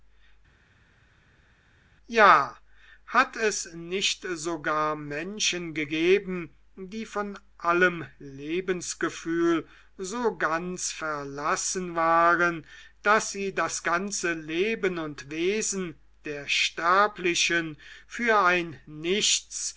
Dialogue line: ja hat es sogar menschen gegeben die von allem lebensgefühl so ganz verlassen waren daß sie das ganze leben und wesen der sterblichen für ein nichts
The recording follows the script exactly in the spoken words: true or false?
false